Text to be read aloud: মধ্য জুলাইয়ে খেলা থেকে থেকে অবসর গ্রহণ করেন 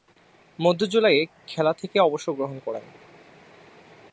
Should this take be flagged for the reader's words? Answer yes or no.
yes